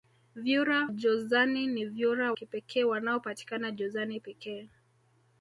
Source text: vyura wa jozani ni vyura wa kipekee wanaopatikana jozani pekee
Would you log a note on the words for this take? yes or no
yes